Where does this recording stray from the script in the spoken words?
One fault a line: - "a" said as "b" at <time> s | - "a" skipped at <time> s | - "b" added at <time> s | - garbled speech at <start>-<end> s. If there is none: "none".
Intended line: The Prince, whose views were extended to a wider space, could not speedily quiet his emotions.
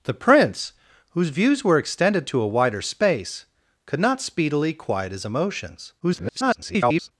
- garbled speech at 6.0-7.1 s